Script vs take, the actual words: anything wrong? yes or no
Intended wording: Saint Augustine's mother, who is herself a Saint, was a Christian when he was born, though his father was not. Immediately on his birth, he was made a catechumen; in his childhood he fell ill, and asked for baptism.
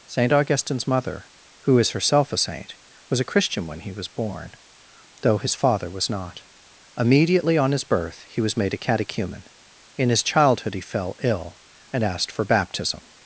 no